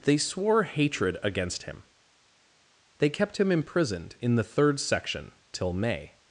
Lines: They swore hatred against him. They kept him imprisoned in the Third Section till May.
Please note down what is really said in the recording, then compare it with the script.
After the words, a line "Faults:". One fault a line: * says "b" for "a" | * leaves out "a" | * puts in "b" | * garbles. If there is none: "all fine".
They swore hatred against him. They kept him imprisoned in the Third Section till May.
Faults:
all fine